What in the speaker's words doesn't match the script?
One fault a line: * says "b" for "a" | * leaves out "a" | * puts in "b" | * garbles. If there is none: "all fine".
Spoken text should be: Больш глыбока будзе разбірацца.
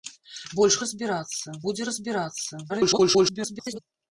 * says "разбірацца" for "глыбока"
* garbles